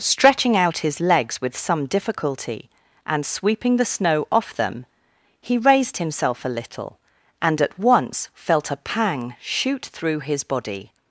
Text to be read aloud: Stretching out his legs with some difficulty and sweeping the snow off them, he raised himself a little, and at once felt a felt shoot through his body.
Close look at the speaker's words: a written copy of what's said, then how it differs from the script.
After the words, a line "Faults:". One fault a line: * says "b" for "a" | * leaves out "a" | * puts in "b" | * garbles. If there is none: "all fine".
Stretching out his legs with some difficulty and sweeping the snow off them, he raised himself a little, and at once felt a pang shoot through his body.
Faults:
* says "pang" for "felt"